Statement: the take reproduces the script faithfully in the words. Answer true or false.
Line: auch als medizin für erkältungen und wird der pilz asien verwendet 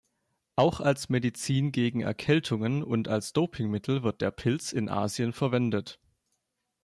false